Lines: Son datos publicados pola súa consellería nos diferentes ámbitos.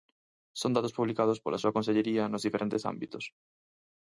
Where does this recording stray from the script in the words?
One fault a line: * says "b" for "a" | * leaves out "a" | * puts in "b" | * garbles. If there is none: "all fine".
all fine